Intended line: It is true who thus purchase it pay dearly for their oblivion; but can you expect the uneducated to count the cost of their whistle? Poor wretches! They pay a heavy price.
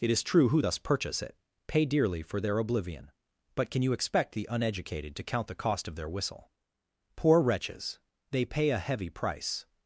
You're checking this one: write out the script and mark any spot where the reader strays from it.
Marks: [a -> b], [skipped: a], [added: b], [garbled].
It is true who thus purchase it pay dearly for their oblivion; but can you expect the uneducated to count the cost of their whistle? Poor wretches! They pay a heavy price.